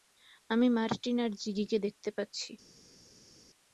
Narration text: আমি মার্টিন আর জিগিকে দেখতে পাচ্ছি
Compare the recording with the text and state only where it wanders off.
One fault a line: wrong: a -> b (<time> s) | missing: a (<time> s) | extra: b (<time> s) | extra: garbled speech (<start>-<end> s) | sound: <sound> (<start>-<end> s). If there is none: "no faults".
no faults